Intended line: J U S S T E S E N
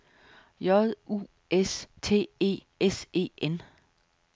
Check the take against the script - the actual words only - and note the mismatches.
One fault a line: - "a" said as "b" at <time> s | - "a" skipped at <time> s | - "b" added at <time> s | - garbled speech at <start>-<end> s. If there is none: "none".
- "S" skipped at 1.9 s